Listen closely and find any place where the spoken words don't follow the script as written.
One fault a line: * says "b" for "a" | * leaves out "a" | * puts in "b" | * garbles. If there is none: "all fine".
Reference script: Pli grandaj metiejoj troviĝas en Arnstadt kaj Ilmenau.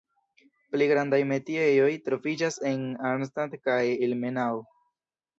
all fine